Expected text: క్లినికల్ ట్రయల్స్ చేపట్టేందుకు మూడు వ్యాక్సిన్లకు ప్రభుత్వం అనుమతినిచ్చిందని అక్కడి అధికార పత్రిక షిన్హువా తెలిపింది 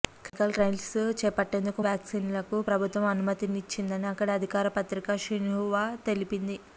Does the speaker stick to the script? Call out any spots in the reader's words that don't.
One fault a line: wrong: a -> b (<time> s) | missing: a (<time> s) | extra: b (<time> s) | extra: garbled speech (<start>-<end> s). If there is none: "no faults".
missing: మూడు (1.8 s)